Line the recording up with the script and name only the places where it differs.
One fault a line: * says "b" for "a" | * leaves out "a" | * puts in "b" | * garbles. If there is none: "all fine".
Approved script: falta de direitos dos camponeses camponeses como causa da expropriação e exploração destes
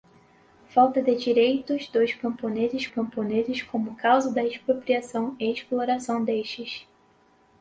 all fine